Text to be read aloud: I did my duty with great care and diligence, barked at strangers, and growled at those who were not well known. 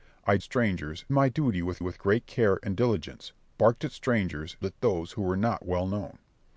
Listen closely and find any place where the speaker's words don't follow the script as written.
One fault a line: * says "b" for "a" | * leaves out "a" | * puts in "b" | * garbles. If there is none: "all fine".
* says "strangers" for "did"
* puts in "with"
* leaves out "and growled"